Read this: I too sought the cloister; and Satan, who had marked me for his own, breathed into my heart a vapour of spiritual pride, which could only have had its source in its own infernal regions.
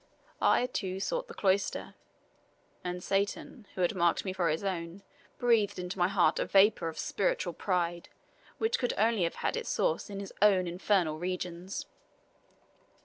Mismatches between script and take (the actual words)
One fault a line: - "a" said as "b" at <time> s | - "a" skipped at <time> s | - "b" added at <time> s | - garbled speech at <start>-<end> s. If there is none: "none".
- "its" said as "his" at 10.2 s